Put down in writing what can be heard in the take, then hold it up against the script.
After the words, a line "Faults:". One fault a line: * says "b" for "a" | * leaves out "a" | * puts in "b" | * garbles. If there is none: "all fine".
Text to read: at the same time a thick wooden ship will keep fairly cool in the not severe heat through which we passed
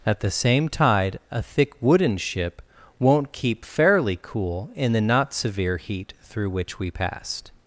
at the same tide a thick wooden ship won't keep fairly cool in the not severe heat through which we passed
Faults:
* says "tide" for "time"
* says "won't" for "will"